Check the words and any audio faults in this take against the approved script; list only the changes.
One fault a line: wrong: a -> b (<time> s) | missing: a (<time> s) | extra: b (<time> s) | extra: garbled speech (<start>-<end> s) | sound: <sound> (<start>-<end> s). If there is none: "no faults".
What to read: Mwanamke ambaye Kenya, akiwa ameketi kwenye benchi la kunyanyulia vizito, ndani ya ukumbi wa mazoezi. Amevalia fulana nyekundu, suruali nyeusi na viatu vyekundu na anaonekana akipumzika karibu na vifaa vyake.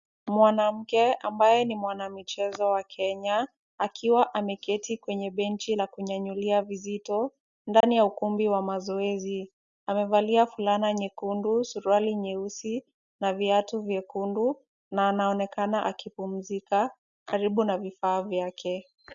extra: ni mwanamichezo wa (1.6 s)
sound: dropout (7.8-7.8 s)